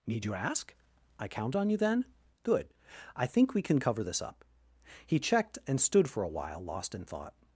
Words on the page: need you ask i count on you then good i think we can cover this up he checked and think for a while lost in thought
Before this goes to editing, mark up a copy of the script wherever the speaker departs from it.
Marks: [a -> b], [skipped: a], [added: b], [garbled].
need you ask i count on you then good i think we can cover this up he checked and [think -> stood] for a while lost in thought